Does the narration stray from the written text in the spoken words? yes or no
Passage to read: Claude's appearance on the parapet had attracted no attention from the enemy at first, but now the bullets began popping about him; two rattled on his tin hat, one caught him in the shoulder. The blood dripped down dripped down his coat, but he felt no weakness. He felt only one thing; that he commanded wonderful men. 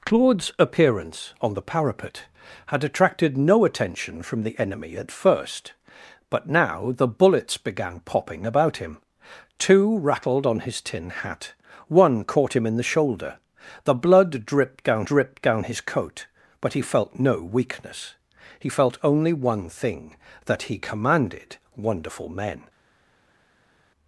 no